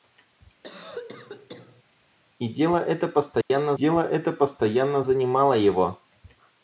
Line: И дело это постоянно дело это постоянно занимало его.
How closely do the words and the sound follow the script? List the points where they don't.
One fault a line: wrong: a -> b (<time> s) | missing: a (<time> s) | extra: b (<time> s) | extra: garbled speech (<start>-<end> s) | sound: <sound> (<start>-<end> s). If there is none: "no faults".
sound: cough (0.6-1.8 s)
sound: dropout (3.4-3.5 s)